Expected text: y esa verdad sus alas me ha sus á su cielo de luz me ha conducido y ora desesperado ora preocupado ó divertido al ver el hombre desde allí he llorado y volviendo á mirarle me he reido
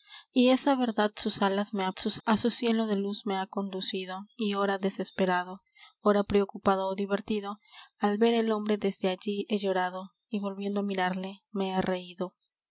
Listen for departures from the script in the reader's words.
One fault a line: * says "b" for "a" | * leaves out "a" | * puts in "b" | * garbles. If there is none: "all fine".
all fine